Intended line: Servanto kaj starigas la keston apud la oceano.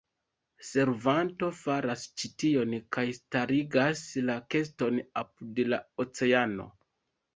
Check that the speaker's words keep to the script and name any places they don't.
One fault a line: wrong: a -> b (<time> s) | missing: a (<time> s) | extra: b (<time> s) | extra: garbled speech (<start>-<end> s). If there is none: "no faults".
extra: faras ĉi tion (1.6 s)